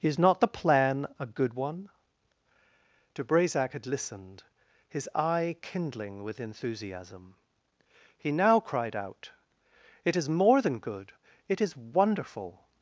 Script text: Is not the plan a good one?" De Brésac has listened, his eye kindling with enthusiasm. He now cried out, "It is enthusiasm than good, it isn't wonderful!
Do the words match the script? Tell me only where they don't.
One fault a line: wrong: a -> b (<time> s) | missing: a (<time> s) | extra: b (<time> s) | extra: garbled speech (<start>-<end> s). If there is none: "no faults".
wrong: has -> had (3.7 s)
wrong: enthusiasm -> more (10.3 s)
wrong: isn't -> is (11.6 s)